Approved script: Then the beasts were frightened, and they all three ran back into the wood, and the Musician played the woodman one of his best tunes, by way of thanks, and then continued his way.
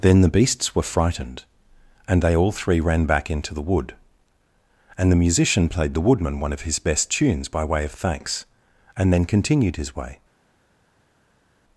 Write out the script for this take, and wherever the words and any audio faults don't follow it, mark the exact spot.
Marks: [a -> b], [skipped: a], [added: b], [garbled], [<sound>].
Then the beasts were frightened, and they all three ran back into the wood, and the Musician played the woodman one of his best tunes, by way of thanks, and then continued his way.